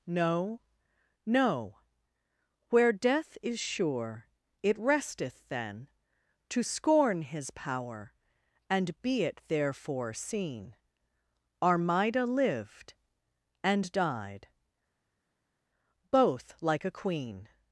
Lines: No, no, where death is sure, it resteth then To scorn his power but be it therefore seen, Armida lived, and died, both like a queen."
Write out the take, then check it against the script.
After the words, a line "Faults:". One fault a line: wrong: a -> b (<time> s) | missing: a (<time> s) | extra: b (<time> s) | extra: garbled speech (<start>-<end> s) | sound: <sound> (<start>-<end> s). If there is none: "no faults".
No, no, where death is sure, it resteth then To scorn his power and be it therefore seen, Armida lived, and died, both like a queen."
Faults:
wrong: but -> and (8.7 s)